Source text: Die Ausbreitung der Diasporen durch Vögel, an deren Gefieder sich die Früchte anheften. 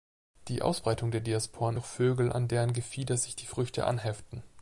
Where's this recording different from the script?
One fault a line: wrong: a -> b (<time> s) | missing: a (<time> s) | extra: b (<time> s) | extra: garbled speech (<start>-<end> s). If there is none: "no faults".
no faults